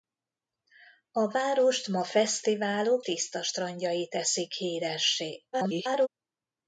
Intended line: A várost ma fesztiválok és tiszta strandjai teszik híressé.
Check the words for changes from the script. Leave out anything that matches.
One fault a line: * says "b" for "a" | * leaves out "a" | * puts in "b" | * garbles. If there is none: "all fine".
* leaves out "és"
* garbles